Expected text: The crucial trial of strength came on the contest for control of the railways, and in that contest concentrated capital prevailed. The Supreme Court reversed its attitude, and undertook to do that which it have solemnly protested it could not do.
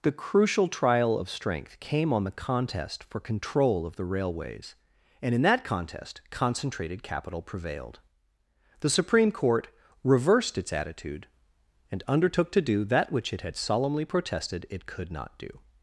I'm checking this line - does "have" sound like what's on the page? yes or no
no